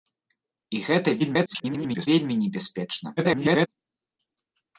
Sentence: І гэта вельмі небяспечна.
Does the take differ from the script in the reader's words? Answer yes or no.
yes